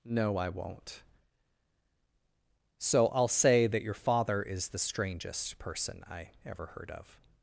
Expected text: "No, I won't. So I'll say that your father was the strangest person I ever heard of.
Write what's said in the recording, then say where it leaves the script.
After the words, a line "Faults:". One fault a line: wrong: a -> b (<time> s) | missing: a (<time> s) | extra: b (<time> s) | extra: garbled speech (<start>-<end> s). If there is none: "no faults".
"No, I won't. So I'll say that your father is the strangest person I ever heard of.
Faults:
wrong: was -> is (4.4 s)